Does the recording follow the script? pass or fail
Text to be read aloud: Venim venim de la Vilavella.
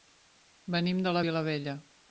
fail